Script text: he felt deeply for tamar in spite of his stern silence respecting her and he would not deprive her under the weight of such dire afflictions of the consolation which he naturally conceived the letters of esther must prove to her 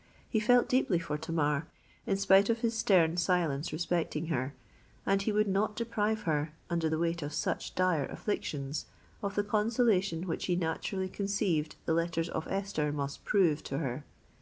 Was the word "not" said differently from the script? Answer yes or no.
no